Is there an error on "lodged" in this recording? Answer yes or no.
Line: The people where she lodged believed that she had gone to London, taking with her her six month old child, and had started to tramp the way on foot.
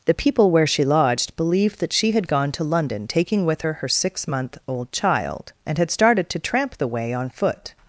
no